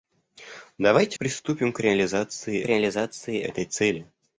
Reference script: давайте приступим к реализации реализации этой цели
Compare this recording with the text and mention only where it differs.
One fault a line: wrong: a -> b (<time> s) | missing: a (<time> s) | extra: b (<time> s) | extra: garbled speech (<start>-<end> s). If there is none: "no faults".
no faults